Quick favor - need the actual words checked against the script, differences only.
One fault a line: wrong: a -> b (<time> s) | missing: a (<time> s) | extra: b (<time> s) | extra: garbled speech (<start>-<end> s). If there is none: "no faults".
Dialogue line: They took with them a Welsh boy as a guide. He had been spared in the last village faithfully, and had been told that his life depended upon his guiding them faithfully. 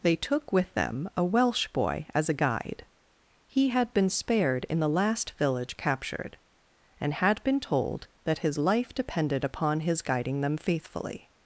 wrong: faithfully -> captured (5.8 s)